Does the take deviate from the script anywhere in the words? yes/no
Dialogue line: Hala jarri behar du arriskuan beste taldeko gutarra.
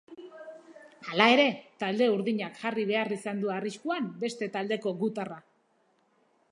yes